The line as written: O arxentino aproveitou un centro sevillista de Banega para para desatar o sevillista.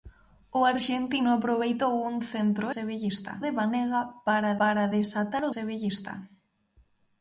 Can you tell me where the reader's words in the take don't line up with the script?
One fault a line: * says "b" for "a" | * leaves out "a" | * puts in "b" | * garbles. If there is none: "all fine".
all fine